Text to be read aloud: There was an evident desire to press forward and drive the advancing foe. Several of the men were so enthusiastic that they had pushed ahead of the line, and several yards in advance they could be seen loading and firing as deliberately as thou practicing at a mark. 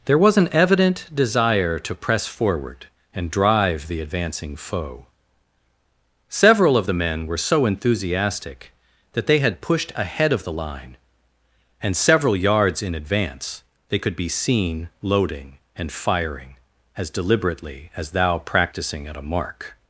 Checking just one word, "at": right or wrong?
right